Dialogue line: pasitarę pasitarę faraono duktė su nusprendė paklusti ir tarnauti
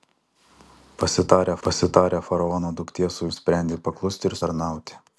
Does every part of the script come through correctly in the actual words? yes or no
yes